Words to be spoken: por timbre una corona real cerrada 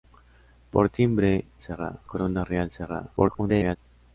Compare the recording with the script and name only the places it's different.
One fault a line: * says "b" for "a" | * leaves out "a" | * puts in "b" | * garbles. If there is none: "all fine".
* says "cerrada" for "una"
* garbles